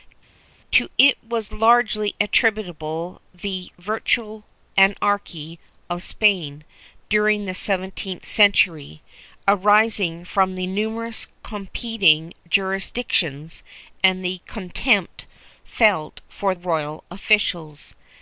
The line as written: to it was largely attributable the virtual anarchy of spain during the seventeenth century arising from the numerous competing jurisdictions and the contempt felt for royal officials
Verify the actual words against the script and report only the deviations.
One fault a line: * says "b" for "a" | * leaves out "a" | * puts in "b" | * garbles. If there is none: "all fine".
all fine